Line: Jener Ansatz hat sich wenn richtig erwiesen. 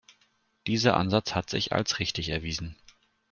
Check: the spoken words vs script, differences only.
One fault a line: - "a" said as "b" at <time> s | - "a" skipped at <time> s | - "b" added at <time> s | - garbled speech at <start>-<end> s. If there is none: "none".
- "Jener" said as "Dieser" at 0.7 s
- "wenn" said as "als" at 1.7 s